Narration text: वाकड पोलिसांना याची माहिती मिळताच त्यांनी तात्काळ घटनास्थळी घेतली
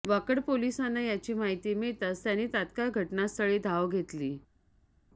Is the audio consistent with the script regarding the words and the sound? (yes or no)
no